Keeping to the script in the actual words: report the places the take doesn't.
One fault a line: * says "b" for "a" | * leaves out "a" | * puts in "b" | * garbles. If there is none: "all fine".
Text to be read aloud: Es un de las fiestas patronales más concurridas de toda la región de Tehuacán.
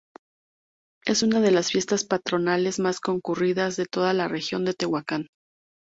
* says "una" for "un"